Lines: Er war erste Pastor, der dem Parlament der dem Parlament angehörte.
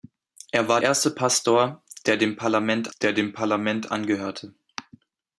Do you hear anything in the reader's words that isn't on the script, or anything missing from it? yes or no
no